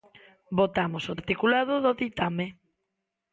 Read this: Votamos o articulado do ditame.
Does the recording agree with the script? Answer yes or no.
yes